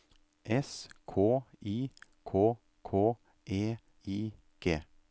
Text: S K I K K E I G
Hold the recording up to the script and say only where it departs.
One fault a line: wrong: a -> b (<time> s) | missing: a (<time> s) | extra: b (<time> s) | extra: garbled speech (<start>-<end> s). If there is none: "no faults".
no faults